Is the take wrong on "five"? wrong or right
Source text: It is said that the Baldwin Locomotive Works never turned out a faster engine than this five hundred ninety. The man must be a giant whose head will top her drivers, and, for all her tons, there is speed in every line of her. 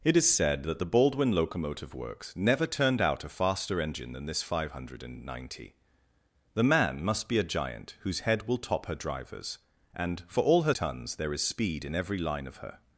right